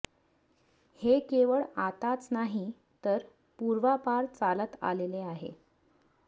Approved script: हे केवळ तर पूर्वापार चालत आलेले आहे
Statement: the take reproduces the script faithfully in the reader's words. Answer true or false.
false